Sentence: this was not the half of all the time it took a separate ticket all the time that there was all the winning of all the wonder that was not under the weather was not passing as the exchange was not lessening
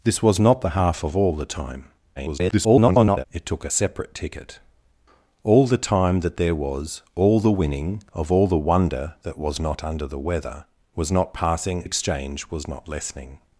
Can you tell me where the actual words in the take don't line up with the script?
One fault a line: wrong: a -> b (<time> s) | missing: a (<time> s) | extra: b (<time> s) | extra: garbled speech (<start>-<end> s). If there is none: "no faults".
extra: garbled speech (2.2-3.2 s)
missing: as the (11.8 s)